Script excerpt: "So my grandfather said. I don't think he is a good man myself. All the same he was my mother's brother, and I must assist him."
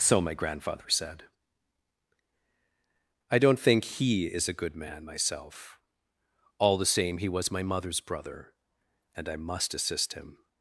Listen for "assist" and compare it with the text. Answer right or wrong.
right